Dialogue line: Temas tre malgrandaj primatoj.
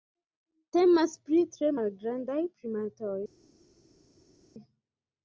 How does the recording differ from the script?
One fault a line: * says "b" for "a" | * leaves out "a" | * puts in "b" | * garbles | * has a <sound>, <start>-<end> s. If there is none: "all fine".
* puts in "pri"